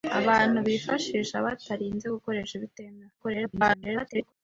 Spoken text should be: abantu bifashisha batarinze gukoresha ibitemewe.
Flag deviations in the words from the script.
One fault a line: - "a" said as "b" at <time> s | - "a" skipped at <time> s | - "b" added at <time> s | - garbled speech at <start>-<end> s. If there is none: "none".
- garbled speech at 3.2-4.3 s